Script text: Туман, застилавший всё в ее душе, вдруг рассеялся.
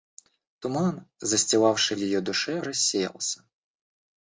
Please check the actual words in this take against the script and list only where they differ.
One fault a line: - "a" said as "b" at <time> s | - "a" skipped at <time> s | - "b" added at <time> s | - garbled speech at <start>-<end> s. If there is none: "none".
- "всё" skipped at 1.9 s
- "вдруг" skipped at 2.6 s